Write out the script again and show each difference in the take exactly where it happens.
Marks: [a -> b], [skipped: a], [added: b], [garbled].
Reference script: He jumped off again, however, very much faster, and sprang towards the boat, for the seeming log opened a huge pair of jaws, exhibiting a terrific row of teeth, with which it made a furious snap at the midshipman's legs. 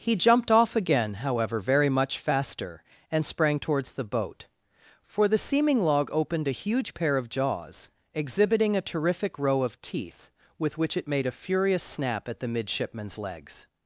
He jumped off again, however, very much faster, and sprang towards the boat, for the seeming log opened a huge pair of jaws, exhibiting a terrific row of teeth, with which it made a furious snap at the midshipman's legs.